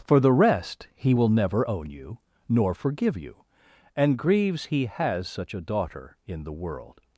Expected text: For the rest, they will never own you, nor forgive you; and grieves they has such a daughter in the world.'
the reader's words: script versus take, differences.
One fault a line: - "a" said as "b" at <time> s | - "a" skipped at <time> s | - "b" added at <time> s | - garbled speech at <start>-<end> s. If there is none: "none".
- "they" said as "he" at 0.9 s
- "they" said as "he" at 4.7 s